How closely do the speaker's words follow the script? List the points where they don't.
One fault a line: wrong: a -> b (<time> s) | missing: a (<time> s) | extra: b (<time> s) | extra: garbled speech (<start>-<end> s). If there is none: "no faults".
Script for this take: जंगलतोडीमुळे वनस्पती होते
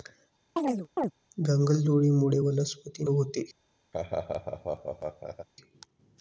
no faults